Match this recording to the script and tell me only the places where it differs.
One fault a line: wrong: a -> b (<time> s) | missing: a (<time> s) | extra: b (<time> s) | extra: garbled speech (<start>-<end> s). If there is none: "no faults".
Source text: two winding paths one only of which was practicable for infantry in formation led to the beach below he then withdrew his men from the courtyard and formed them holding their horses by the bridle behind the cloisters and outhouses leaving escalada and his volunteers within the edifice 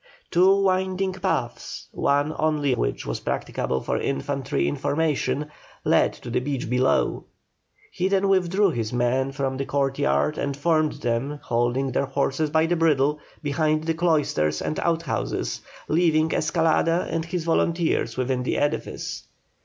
missing: of (2.7 s)